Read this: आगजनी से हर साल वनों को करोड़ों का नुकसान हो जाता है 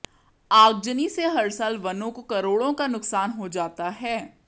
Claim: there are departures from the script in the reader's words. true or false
false